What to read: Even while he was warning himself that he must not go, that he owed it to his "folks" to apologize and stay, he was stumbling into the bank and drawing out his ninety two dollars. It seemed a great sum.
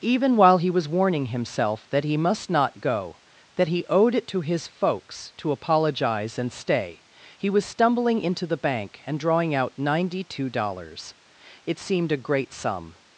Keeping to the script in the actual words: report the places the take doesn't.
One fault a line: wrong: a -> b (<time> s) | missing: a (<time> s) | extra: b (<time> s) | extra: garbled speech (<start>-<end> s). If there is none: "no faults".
missing: his (9.7 s)